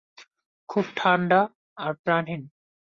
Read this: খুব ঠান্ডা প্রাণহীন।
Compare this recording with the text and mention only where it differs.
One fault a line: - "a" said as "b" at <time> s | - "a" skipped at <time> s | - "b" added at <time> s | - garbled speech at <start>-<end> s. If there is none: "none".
- "আর" added at 1.8 s